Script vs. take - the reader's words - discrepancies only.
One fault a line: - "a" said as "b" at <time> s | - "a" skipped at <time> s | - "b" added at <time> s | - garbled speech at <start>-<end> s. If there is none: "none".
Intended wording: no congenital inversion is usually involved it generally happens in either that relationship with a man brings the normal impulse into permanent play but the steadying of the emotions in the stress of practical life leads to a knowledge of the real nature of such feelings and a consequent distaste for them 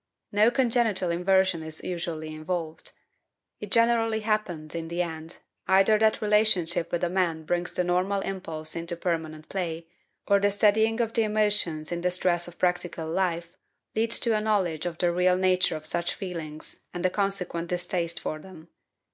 - "the end" added at 4.9 s
- "but" said as "or" at 10.3 s